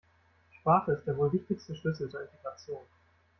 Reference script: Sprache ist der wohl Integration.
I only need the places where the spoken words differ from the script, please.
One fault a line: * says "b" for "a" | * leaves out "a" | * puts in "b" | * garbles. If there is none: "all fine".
* puts in "wichtigste Schlüssel zur"